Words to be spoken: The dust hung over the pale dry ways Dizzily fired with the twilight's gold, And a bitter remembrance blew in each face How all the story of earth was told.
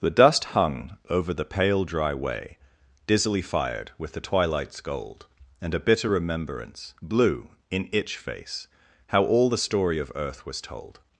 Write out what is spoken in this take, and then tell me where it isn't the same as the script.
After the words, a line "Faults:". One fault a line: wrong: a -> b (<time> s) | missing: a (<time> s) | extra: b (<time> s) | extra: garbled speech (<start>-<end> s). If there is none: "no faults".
The dust hung over the pale dry way Dizzily fired with the twilight's gold, And a bitter remembrance blew in itch face How all the story of earth was told.
Faults:
wrong: ways -> way (2.1 s)
wrong: each -> itch (7.9 s)